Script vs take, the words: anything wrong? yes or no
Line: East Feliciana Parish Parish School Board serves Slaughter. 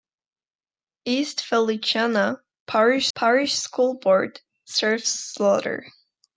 no